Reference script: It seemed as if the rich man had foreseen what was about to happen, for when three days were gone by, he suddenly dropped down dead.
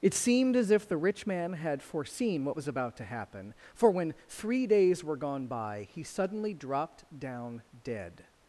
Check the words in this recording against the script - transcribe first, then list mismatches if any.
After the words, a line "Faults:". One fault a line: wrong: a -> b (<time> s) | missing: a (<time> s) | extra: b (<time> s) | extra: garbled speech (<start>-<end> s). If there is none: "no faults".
It seemed as if the rich man had foreseen what was about to happen, for when three days were gone by, he suddenly dropped down dead.
Faults:
no faults